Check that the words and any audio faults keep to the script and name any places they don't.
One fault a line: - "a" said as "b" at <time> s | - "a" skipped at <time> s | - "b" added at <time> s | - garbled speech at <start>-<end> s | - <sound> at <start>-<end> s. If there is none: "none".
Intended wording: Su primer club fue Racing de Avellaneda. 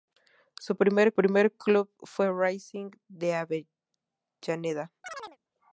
- "primer" added at 1.1 s
- chirp at 5.0-5.4 s